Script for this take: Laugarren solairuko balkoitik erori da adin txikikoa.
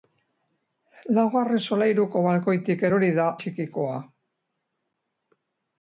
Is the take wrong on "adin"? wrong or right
wrong